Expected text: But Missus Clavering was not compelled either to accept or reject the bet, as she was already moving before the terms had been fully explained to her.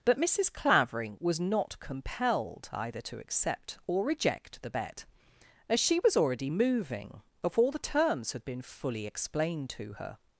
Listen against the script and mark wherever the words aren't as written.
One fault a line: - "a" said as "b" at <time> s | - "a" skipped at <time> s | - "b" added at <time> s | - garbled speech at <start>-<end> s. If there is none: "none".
none